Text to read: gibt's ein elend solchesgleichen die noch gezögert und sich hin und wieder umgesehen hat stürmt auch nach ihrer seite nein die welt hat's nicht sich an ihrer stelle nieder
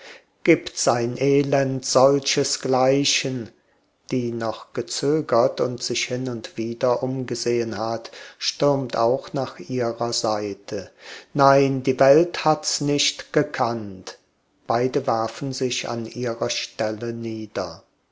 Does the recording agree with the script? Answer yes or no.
no